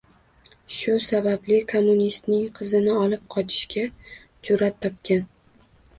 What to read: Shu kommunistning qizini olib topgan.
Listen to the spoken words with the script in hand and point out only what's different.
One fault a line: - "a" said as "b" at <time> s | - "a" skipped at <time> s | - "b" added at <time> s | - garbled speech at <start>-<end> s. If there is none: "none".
- "sababli" added at 1.1 s
- "qochishga jur'at" added at 3.3 s